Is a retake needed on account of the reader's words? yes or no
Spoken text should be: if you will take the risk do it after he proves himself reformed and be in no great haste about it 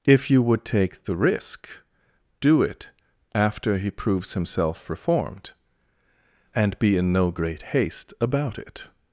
yes